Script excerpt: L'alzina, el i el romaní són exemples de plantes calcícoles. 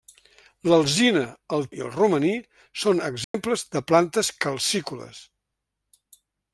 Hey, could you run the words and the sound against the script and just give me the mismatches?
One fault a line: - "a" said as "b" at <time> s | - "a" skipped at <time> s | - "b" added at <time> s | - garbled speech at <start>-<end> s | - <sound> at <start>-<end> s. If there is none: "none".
- dropout at 3.2-3.3 s